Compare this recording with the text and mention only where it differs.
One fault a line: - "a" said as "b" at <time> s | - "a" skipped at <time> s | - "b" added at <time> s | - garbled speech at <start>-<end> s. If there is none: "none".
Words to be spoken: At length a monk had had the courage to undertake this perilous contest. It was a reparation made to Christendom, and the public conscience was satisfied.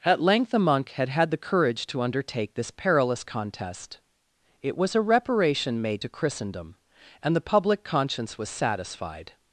none